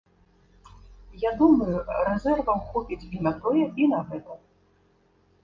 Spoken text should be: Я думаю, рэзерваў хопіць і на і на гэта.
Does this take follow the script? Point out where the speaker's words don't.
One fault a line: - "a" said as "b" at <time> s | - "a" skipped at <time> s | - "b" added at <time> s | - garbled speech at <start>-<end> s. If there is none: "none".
- "тое" added at 3.5 s